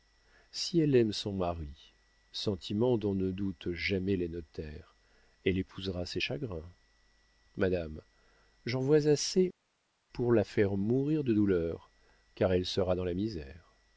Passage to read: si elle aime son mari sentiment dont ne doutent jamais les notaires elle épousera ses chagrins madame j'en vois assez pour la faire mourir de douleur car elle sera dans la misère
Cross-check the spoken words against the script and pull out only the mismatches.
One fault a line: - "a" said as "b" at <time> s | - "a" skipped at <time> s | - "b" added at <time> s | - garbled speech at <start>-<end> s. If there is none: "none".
none